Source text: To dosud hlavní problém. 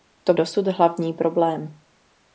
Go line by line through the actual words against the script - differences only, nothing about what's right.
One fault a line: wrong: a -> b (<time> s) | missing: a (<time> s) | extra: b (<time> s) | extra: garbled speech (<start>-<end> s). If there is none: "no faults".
no faults